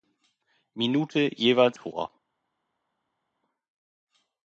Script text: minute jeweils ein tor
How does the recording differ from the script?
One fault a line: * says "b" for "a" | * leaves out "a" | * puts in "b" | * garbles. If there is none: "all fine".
* leaves out "ein"